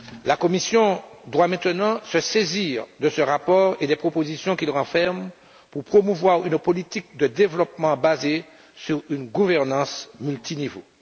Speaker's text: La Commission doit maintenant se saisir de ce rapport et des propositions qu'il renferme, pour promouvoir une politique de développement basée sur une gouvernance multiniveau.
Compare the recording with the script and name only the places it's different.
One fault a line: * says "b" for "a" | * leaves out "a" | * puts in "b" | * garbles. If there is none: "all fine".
all fine